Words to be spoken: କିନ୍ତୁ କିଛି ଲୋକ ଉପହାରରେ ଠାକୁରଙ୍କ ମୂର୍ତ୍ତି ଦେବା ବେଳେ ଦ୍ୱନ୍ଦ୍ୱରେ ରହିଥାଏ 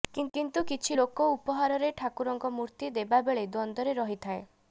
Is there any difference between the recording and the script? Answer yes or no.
no